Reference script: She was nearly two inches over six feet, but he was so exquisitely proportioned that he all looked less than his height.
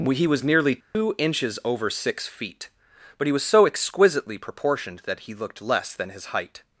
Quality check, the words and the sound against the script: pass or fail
fail